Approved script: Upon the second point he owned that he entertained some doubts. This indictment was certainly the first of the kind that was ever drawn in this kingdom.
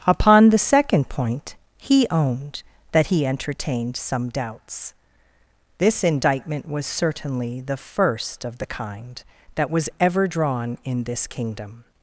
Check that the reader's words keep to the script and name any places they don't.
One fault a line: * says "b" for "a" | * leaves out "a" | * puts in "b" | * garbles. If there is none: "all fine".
all fine